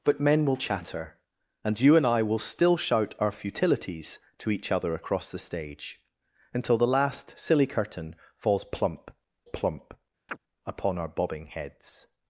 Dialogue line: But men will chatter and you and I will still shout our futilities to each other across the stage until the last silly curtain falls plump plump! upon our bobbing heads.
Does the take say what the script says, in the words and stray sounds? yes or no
no